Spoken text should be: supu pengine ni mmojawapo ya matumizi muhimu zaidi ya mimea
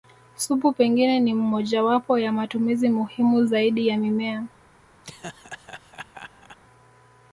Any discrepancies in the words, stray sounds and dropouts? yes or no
yes